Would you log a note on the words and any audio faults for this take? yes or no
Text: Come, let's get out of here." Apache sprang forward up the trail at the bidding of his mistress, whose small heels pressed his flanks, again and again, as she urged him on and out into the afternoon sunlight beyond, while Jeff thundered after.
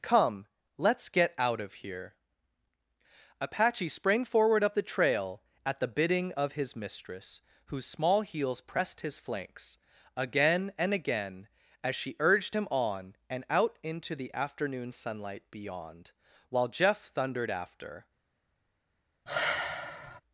yes